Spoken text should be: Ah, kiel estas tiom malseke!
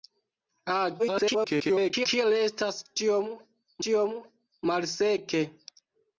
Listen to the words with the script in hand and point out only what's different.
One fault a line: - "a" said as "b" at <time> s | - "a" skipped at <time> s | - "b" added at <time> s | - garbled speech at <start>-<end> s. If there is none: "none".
- garbled speech at 1.0-2.1 s
- "tiom" added at 3.9 s